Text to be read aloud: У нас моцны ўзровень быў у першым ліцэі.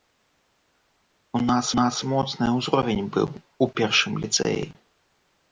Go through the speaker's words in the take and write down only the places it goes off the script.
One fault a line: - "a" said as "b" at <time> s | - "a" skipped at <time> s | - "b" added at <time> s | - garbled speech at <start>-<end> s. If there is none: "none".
- "нас" added at 1.8 s